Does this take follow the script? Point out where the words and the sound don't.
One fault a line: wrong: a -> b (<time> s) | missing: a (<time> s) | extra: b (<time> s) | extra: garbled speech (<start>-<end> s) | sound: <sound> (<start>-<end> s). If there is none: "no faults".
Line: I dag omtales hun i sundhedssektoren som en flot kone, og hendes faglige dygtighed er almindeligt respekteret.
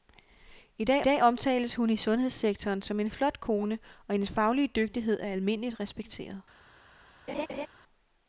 extra: dag (1.0 s)
sound: laugh (7.3-7.7 s)